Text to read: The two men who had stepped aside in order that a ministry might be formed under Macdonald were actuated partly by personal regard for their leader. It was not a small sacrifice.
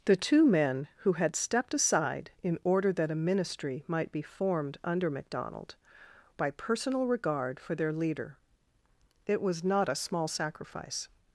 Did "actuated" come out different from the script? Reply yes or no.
yes